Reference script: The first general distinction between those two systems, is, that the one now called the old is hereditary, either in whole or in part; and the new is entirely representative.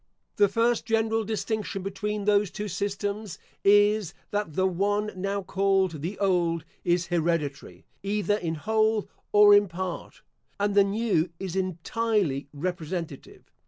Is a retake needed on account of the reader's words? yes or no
no